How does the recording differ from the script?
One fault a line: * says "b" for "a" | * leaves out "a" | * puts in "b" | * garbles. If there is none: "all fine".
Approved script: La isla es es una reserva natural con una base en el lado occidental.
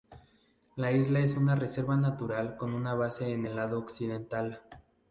* leaves out "es"